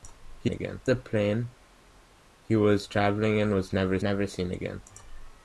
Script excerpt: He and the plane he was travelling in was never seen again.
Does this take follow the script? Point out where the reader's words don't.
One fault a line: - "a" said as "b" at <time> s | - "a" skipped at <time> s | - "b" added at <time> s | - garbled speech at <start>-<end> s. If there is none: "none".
- "and" said as "again" at 0.5 s
- "never" added at 4.0 s